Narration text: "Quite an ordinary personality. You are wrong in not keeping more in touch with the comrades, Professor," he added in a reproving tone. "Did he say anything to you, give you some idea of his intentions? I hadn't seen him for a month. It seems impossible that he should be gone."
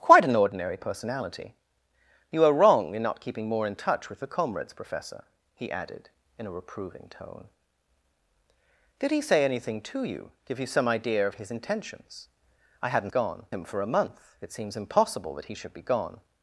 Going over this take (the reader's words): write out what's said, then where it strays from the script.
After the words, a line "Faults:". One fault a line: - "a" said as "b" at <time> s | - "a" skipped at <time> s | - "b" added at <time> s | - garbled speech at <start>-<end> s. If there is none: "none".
"Quite an ordinary personality. You are wrong in not keeping more in touch with the comrades, Professor," he added in a reproving tone. "Did he say anything to you, give you some idea of his intentions? I hadn't gone him for a month. It seems impossible that he should be gone."
Faults:
- "seen" said as "gone" at 13.1 s